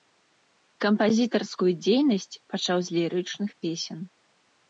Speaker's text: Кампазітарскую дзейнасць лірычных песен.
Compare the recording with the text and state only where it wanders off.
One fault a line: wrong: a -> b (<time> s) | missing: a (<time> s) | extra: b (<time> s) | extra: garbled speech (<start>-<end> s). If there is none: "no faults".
extra: пачаў з (2.5 s)